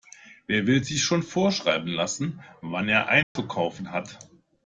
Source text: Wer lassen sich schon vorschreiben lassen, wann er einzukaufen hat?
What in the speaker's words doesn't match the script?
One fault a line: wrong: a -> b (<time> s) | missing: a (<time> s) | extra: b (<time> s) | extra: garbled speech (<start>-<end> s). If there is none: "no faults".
wrong: lassen -> will (0.7 s)